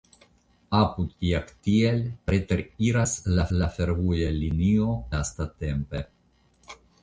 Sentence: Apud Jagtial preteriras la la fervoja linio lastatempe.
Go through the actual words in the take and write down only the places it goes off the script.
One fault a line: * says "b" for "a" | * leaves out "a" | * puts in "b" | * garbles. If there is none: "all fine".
all fine